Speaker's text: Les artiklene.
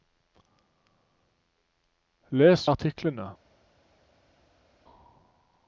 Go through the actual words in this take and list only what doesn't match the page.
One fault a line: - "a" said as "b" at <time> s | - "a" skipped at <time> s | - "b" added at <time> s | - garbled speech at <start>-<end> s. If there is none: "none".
none